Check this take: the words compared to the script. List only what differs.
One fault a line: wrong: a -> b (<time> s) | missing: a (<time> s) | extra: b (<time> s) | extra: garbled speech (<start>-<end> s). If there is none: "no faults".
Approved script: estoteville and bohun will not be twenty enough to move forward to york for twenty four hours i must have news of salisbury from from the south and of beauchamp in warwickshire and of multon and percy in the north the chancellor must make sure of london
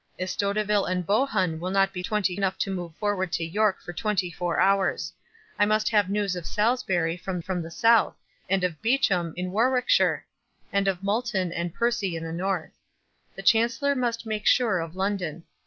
no faults